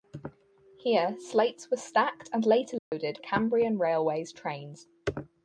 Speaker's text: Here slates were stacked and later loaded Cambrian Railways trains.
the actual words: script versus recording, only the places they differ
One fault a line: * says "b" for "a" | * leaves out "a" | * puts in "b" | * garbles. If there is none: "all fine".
all fine